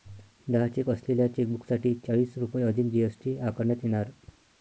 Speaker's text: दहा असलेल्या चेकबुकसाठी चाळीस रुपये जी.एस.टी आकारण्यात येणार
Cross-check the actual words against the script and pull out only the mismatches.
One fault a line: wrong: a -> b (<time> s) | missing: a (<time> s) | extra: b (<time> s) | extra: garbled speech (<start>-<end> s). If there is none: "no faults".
extra: चेक (0.7 s)
extra: अधिक (2.6 s)